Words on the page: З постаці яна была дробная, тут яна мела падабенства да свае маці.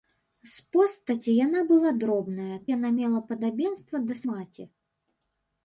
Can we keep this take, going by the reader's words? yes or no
no